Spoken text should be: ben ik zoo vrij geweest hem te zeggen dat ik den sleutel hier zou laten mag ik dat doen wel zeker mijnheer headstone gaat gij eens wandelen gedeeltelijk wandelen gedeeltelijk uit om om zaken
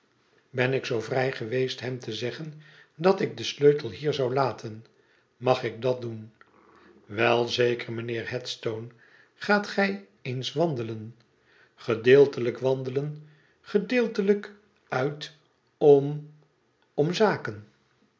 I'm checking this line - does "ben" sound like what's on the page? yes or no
yes